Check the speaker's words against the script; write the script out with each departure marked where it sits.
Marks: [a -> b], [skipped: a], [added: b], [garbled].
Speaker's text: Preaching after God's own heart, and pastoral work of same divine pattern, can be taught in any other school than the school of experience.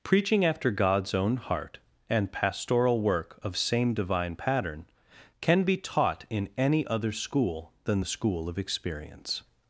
Preaching after God's own heart, and pastoral work of same divine pattern, can be taught in any other school than the school of experience.